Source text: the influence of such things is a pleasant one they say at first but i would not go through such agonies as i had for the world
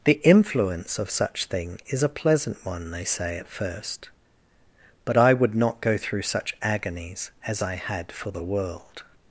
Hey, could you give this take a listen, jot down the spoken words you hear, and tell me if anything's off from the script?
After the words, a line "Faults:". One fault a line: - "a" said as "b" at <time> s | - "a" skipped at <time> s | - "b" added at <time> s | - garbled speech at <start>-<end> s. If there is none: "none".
the influence of such thing is a pleasant one they say at first but i would not go through such agonies as i had for the world
Faults:
- "things" said as "thing" at 1.4 s